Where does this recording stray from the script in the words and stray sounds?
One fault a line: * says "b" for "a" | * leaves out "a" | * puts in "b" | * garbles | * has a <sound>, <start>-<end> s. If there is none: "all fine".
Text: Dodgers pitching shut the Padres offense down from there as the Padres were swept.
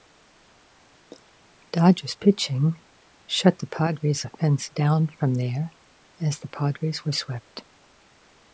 all fine